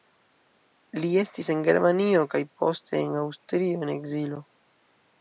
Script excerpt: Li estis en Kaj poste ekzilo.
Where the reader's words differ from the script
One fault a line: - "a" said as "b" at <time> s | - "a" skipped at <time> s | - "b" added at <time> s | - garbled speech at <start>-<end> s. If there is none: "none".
- "Germanio" added at 1.7 s
- "en Aŭstrio en" added at 3.0 s